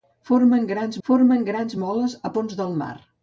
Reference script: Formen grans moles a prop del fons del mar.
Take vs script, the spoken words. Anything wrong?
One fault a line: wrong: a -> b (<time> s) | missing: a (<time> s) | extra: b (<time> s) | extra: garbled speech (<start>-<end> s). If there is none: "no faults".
extra: formen grans (1.1 s)
missing: prop del (2.3 s)